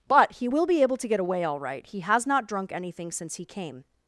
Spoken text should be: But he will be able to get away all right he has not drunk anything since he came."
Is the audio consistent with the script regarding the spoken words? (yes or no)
yes